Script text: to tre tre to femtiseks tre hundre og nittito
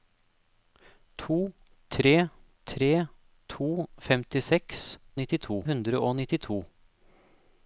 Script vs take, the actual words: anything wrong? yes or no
yes